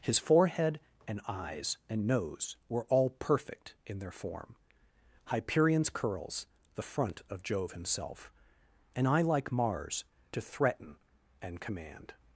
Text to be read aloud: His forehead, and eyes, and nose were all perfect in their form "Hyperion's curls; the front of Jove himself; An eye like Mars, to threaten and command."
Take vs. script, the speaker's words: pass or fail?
pass